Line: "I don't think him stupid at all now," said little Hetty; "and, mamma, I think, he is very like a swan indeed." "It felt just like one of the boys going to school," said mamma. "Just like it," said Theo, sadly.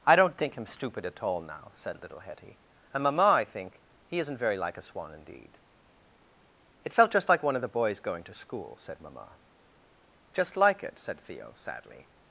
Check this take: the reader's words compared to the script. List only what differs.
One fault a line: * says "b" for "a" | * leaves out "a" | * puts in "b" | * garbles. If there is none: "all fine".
* says "isn't" for "is"